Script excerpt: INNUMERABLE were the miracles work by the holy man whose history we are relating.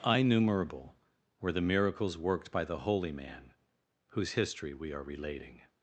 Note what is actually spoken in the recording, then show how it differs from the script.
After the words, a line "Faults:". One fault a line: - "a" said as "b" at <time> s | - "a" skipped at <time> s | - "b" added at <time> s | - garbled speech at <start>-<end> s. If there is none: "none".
INNUMERABLE were the miracles worked by the holy man whose history we are relating.
Faults:
- "work" said as "worked" at 2.2 s